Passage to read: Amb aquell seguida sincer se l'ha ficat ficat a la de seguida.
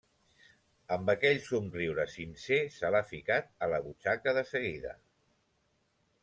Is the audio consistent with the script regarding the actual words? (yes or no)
no